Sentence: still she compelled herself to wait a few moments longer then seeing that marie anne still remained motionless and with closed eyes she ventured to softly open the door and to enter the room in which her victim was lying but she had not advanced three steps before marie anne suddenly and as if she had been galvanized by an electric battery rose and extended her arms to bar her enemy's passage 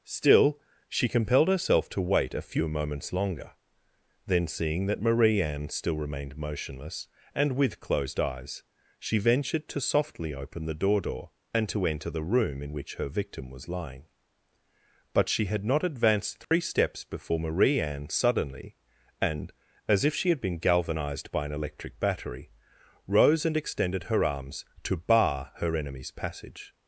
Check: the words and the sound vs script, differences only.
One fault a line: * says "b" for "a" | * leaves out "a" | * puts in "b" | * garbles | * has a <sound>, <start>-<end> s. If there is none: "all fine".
* puts in "door"
* has a dropout, 16.4-16.5 s